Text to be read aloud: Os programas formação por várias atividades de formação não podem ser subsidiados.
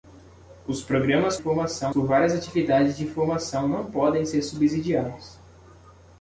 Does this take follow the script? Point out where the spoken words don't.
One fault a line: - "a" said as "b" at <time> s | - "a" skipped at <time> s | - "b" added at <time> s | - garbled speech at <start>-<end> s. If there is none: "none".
none